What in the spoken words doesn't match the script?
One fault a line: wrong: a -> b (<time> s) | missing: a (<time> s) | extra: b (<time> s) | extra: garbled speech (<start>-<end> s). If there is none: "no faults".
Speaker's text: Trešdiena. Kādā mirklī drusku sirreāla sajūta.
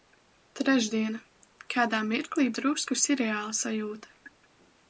no faults